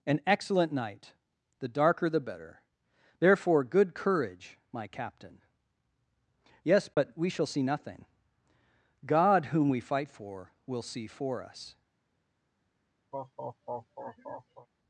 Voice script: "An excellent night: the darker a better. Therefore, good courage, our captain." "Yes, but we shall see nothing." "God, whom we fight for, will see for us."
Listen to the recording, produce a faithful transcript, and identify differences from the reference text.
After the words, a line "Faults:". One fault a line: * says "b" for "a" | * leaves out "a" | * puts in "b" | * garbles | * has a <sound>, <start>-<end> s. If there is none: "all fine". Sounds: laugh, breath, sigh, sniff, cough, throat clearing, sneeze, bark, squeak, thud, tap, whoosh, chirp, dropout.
"An excellent night: the darker the better. Therefore, good courage, my captain." "Yes, but we shall see nothing." "God, whom we fight for, will see for us."
Faults:
* says "the" for "a"
* says "my" for "our"
* has a dropout, 6.9-7.0 s
* has a laugh, 13.1-14.7 s